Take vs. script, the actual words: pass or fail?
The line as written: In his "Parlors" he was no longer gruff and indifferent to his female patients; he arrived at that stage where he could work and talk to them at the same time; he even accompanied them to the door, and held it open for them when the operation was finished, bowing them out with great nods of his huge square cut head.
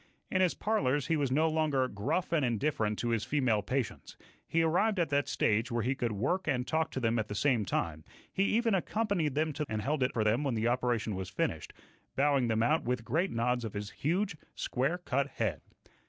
fail